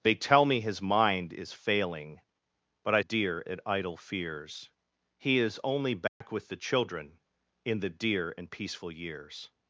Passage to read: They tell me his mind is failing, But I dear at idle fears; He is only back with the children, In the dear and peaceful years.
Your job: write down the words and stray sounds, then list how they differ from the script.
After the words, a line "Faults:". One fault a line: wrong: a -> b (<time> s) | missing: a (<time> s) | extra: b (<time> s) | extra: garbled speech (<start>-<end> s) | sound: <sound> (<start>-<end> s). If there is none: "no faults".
They tell me his mind is failing, But I dear at idle fears; He is only back with the children, In the dear and peaceful years.
Faults:
sound: dropout (6.1-6.2 s)